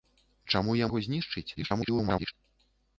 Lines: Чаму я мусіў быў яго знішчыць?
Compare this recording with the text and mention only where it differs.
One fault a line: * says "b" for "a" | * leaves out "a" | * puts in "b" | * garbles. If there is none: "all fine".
* leaves out "мусіў быў"
* garbles